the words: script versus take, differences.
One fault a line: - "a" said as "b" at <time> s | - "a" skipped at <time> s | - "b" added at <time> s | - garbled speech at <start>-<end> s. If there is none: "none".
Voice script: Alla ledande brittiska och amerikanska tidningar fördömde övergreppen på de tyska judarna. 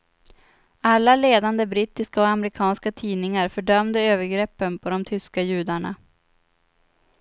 none